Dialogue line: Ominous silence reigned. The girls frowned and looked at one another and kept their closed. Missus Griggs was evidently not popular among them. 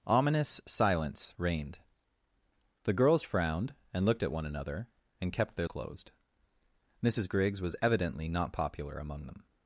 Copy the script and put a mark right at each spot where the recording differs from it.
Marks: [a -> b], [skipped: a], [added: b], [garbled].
Ominous silence reigned. The girls frowned and looked at one another and kept their closed. Missus Griggs was evidently not popular among them.